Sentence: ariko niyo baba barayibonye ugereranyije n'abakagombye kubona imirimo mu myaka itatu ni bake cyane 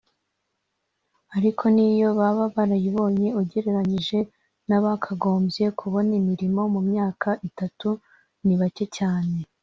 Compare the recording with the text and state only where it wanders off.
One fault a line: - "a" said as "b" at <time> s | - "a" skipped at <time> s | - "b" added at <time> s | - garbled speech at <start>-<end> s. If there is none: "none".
none